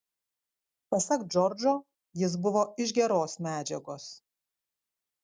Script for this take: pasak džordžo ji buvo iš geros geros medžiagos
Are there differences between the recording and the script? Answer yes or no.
yes